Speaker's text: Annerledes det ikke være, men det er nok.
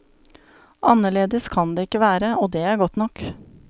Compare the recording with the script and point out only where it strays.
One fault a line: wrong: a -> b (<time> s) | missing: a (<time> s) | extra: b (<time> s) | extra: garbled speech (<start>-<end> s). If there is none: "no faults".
extra: kan (1.5 s)
wrong: men -> og (2.4 s)
extra: godt (2.8 s)